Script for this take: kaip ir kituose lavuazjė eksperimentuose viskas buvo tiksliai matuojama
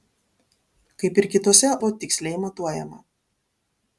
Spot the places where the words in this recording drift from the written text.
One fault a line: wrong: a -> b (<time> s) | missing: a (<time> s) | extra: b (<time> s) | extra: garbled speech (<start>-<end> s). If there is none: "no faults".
missing: lavuazjė eksperimentuose viskas (1.7 s)